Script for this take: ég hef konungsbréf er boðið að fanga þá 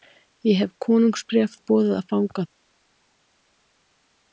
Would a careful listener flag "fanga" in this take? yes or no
no